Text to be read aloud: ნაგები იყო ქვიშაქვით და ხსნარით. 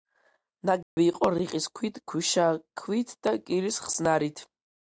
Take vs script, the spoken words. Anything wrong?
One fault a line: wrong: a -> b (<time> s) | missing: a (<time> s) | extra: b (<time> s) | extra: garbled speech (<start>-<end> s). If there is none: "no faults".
extra: რიყის ქვით (1.4 s)
extra: კირის (3.5 s)